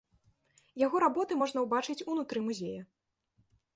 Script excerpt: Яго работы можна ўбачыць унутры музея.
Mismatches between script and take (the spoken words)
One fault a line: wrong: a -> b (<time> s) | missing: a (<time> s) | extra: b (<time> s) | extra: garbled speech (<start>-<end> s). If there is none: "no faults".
no faults